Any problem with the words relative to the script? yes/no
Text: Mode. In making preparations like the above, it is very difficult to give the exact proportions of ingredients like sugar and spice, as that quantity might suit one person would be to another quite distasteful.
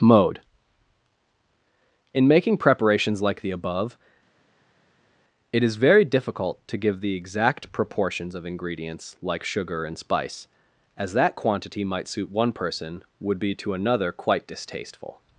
no